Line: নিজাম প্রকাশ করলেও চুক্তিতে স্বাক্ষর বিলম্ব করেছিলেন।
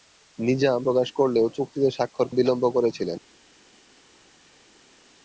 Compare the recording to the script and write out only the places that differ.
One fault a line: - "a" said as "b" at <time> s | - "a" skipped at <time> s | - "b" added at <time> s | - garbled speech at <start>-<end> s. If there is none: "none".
none